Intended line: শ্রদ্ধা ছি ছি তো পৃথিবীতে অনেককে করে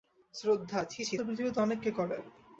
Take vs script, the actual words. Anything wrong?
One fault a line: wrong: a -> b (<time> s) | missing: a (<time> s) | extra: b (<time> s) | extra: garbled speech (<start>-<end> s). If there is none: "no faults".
no faults